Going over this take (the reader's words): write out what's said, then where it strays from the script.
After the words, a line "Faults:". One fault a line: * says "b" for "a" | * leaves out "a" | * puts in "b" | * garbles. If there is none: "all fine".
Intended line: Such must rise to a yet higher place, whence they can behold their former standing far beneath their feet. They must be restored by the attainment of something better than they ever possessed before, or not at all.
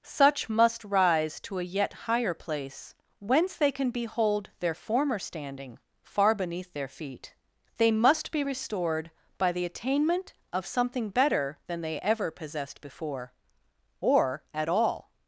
Such must rise to a yet higher place, whence they can behold their former standing far beneath their feet. They must be restored by the attainment of something better than they ever possessed before, or at all.
Faults:
* leaves out "not"